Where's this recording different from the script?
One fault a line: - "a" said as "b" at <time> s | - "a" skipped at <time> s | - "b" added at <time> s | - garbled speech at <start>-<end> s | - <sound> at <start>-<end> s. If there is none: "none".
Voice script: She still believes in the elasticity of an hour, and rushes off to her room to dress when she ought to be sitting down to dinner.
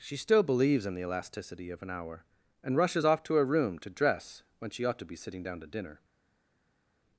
none